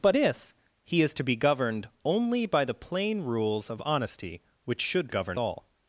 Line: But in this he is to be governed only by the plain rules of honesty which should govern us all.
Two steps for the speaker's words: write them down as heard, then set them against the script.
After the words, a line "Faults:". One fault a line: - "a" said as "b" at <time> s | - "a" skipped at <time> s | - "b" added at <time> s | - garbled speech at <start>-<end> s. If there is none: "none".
But this he is to be governed only by the plain rules of honesty which should govern all.
Faults:
- "in" skipped at 0.1 s
- "us" skipped at 5.4 s